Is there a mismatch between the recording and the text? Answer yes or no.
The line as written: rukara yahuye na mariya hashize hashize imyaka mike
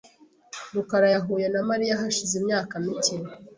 yes